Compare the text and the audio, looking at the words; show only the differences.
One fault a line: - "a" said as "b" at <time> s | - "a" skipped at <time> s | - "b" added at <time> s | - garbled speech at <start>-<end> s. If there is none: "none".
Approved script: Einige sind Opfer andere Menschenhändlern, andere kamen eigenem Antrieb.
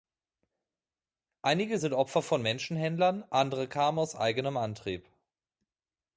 - "andere" said as "von" at 2.2 s
- "aus" added at 4.0 s